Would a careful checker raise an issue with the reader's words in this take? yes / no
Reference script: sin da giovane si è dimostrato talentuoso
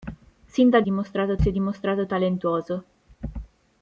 yes